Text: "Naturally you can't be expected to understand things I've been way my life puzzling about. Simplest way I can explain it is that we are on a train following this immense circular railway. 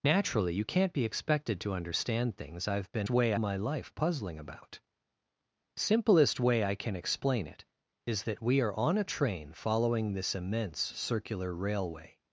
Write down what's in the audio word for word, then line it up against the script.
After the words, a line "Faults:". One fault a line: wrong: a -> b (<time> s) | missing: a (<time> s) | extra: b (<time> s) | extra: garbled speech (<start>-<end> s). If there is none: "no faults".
"Naturally you can't be expected to understand things I've been way my life puzzling about. Simplest way I can explain it is that we are on a train following this immense circular railway.
Faults:
no faults